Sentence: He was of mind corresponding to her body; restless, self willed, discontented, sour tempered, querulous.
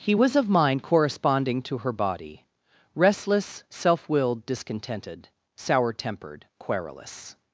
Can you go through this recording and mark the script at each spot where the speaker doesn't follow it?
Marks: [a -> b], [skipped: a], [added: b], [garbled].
He was of mind corresponding to her body; restless, self willed, discontented, sour tempered, querulous.